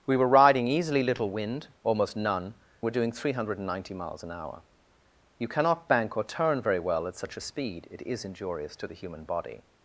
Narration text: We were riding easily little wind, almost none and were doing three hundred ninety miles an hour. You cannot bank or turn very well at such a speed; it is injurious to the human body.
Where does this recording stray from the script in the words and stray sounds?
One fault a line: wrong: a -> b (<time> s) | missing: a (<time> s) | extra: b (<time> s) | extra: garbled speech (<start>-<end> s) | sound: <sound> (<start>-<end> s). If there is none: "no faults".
missing: and (2.5 s)